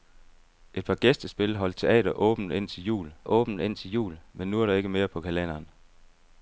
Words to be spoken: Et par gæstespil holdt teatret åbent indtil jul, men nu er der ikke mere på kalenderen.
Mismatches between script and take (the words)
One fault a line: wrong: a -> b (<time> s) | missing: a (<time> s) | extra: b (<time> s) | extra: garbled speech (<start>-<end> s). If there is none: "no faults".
extra: åbent indtil jul (3.2 s)